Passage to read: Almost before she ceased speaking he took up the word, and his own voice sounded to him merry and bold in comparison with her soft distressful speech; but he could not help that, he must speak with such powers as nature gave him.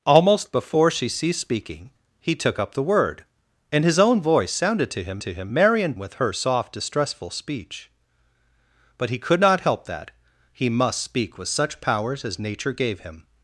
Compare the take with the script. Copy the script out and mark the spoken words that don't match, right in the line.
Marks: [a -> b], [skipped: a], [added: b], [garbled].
Almost before she ceased speaking he took up the word, and his own voice sounded to him [added: to him] merry and [skipped: bold in comparison] with her soft distressful speech; but he could not help that, he must speak with such powers as nature gave him.